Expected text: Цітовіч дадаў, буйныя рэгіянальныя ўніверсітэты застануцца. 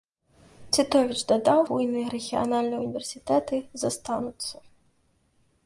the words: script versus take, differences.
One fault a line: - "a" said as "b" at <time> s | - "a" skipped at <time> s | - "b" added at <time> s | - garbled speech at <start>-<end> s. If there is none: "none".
none